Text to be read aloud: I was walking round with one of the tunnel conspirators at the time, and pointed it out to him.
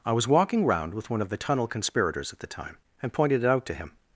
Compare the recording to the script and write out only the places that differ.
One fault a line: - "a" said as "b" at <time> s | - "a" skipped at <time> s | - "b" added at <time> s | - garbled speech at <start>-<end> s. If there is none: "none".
none